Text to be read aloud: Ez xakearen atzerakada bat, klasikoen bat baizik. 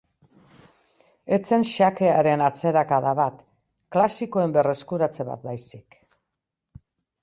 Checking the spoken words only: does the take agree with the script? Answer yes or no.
no